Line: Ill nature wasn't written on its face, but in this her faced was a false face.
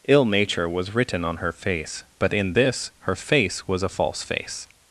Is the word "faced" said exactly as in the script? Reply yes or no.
no